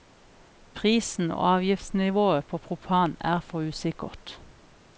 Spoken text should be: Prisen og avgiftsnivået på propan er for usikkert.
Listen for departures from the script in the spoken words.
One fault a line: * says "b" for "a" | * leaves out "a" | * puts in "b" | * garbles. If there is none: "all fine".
all fine